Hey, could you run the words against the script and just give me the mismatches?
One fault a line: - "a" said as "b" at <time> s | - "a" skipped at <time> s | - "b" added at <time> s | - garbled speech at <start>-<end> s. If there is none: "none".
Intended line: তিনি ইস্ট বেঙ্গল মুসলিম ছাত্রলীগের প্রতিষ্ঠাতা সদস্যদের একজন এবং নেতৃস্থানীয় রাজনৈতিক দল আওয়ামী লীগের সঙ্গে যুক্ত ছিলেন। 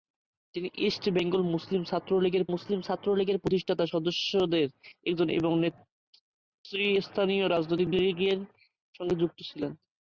- "মুসলিম ছাত্রলীগের" added at 2.5 s
- "দল আওয়ামী" skipped at 7.9 s